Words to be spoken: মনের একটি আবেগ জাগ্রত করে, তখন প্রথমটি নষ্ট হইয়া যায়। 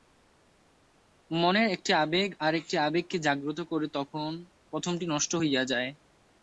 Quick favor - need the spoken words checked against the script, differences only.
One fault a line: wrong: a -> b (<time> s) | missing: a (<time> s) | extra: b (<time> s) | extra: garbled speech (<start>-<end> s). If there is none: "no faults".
extra: আর একটি আবেগকে (2.4 s)